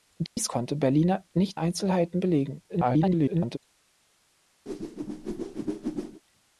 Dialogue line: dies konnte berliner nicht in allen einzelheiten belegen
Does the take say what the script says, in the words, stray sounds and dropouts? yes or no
no